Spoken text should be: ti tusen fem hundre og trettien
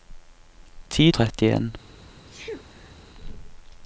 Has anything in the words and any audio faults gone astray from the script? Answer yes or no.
yes